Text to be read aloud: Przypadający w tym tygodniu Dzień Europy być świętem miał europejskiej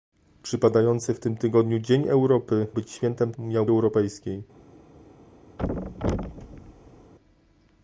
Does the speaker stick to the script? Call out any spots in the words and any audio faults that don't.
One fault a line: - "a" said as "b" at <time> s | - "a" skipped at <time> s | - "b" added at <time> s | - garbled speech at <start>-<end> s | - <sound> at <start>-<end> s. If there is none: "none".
- thud at 5.6-7.1 s